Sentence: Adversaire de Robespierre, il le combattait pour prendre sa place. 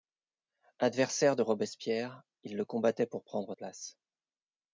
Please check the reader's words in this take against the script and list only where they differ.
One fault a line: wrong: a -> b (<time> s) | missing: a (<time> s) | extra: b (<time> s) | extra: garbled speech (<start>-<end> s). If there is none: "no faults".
missing: sa (3.5 s)